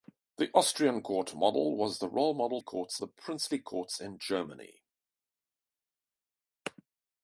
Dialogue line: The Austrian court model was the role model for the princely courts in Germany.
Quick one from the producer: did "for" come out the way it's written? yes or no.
no